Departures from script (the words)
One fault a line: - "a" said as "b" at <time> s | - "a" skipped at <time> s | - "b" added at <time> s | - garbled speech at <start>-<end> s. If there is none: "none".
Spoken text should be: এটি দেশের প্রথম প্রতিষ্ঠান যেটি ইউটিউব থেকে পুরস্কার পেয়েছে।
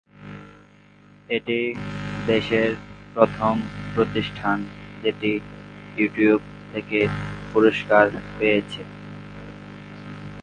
none